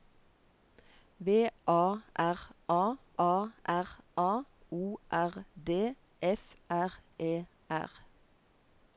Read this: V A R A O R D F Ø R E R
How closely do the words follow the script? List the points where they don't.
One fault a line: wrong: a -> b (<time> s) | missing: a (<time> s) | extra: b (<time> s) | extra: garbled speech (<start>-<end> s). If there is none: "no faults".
extra: A R A (3.2 s)
missing: Ø (6.5 s)